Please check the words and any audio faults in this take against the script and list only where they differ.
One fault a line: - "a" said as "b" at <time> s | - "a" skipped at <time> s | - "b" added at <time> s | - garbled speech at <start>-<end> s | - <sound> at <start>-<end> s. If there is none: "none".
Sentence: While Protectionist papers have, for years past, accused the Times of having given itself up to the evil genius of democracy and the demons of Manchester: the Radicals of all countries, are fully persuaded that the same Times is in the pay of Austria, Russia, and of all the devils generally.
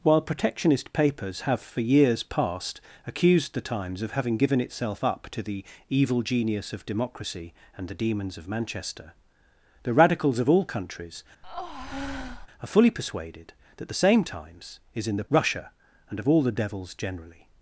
- breath at 11.4-12.5 s
- "pay of Austria" skipped at 15.2 s